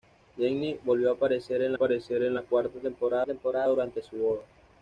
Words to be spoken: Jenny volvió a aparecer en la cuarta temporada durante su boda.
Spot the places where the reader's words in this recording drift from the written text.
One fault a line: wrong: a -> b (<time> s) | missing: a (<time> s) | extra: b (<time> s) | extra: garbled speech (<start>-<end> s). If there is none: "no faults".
extra: aparecer en (1.7 s)
extra: temporada (3.2 s)